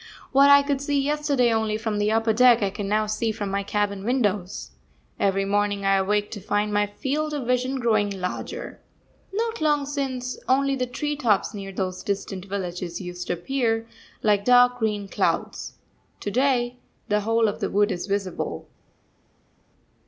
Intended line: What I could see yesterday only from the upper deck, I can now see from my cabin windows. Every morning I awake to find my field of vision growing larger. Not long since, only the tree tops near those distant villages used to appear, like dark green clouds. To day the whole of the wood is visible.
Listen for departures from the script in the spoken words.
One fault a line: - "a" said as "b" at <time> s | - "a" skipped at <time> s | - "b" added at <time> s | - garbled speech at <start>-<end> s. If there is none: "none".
none